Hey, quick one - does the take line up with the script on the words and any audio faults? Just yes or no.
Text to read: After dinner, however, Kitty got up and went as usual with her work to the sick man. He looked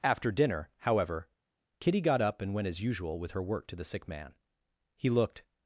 yes